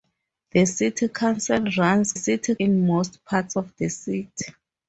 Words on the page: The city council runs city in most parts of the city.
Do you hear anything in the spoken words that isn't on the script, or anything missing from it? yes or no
no